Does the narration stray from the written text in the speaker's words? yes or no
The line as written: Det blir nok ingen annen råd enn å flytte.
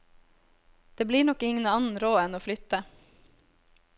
no